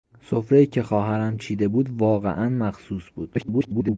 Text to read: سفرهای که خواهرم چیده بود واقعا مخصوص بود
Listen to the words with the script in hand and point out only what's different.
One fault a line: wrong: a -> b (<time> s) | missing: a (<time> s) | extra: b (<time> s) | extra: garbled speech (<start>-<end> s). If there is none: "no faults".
extra: garbled speech (3.3-4.0 s)